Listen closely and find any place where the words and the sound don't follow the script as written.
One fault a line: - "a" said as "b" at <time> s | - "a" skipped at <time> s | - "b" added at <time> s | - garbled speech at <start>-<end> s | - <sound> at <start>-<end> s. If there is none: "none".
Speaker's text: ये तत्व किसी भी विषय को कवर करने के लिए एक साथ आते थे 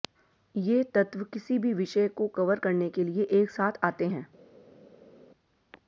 - "थे" said as "हैं" at 4.1 s